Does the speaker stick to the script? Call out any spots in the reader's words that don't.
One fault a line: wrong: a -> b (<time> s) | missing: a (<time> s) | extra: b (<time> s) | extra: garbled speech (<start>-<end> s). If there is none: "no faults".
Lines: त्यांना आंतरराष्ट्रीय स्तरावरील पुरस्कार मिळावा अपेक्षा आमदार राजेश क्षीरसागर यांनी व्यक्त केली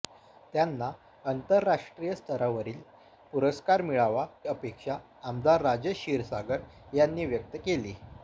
no faults